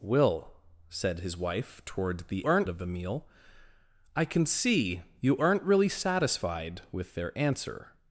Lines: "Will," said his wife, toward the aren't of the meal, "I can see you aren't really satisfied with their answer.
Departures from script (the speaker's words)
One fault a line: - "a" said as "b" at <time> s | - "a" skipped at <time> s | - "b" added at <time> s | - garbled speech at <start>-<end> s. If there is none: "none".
none